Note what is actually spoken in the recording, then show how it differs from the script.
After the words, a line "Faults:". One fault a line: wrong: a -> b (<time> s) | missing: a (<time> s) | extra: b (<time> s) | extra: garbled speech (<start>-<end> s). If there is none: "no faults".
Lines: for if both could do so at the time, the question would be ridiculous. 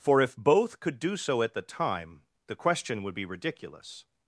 for if both could do so at the time, the question would be ridiculous.
Faults:
no faults